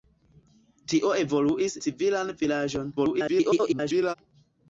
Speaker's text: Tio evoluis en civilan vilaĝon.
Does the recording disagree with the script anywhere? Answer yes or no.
yes